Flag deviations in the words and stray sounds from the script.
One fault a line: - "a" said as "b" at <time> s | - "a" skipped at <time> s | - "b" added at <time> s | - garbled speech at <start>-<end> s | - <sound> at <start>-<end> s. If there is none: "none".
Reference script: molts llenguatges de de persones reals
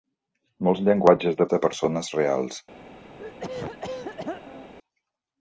- throat clearing at 3.2-4.7 s